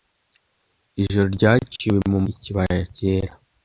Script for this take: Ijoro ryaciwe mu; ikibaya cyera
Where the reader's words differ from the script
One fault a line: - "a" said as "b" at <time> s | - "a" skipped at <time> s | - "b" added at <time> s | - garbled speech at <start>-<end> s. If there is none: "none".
none